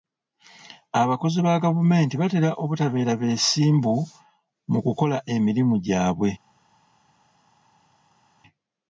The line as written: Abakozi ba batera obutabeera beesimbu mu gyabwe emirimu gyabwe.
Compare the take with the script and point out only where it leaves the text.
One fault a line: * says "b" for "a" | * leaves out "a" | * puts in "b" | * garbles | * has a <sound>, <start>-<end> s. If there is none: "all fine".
* puts in "gavumenti"
* says "kukola" for "gyabwe"